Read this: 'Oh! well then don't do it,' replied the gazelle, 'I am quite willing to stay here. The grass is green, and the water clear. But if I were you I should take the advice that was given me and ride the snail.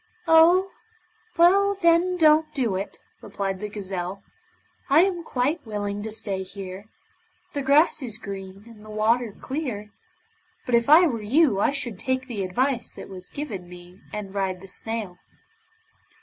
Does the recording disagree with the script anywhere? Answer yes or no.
no